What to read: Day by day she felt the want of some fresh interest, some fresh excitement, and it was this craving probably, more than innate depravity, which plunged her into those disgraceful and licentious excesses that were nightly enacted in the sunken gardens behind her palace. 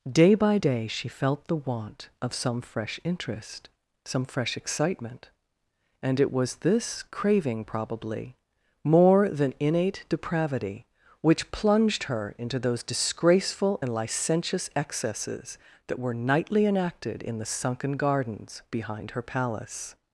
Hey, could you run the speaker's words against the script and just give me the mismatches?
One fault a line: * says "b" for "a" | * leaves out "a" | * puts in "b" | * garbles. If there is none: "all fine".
all fine